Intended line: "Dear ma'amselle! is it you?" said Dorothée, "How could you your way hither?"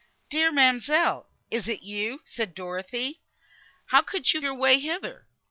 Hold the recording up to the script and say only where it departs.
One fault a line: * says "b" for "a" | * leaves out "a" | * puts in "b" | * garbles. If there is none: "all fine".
all fine